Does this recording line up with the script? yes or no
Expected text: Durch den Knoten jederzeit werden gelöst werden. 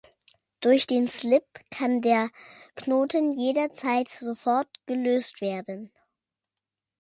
no